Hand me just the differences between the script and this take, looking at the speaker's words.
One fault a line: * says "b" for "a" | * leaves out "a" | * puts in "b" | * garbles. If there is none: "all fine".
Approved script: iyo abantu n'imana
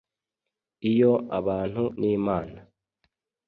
all fine